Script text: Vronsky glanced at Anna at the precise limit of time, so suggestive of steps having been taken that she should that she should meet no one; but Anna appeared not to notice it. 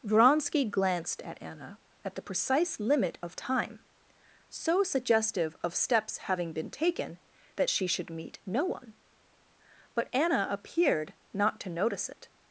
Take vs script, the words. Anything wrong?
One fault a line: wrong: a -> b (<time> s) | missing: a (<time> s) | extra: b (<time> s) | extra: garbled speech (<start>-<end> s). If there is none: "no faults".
missing: that she should (8.1 s)